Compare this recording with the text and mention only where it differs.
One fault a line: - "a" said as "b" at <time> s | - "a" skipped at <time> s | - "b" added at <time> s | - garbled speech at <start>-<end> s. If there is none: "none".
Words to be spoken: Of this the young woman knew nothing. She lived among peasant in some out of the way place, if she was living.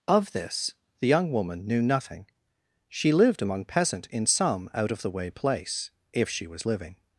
none